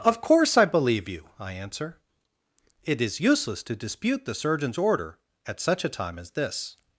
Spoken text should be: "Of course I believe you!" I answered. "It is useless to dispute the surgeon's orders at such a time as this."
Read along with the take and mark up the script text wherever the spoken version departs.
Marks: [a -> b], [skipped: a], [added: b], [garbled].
"Of course I believe you!" I [answered. -> answer] "It is useless to dispute the surgeon's [orders -> order] at such a time as this."